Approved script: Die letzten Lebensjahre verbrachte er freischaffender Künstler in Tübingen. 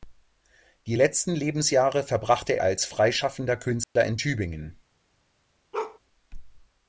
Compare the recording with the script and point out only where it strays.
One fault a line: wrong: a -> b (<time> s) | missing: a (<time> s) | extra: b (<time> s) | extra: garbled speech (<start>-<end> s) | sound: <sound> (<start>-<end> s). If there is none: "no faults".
extra: als (2.6 s)
sound: dropout (3.8-4.0 s)
sound: bark (5.7-6.0 s)